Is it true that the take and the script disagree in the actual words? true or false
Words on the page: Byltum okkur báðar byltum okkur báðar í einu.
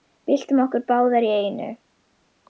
true